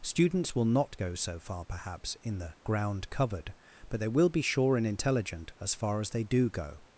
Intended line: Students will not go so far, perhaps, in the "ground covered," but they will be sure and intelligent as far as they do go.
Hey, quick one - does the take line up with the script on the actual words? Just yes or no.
yes